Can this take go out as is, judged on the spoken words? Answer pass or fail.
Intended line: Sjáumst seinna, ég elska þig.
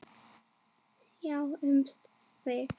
fail